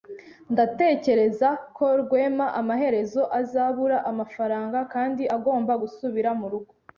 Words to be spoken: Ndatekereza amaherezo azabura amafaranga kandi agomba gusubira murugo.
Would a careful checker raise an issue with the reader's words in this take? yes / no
yes